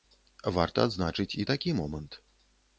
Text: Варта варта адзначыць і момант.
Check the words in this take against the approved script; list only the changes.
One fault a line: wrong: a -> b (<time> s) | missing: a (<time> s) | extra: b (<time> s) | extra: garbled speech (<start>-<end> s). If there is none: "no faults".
missing: варта (0.9 s)
extra: такі (1.5 s)